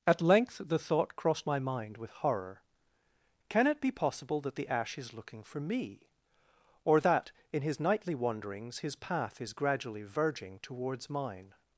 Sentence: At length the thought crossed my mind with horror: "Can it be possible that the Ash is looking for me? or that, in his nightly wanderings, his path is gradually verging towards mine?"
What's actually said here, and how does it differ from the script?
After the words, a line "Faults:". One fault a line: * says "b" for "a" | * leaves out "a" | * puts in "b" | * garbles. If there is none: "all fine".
At length the thought crossed my mind with horror: "Can it be possible that the Ash is looking for me? or that, in his nightly wanderings, his path is gradually verging towards mine?"
Faults:
all fine